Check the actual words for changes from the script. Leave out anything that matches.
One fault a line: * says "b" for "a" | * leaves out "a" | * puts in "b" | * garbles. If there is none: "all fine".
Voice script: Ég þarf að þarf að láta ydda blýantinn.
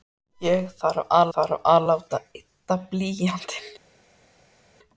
all fine